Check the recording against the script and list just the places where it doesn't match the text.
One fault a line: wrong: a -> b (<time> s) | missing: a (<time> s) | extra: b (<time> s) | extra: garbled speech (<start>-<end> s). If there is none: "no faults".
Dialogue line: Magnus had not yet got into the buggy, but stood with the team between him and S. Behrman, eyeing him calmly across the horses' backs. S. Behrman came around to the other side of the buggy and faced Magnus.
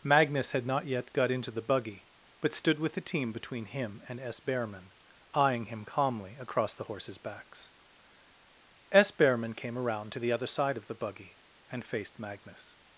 no faults